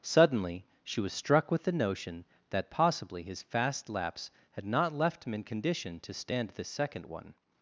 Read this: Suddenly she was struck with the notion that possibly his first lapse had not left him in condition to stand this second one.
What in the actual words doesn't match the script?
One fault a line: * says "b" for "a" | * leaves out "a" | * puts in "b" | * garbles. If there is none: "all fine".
* says "fast" for "first"